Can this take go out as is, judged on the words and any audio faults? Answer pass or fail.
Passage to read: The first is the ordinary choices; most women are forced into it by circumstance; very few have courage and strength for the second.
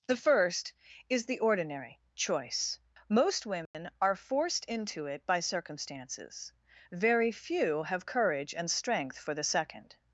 fail